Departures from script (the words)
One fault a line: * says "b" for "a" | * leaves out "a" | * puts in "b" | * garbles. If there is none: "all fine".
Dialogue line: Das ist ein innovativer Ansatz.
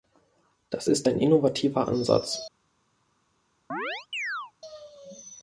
all fine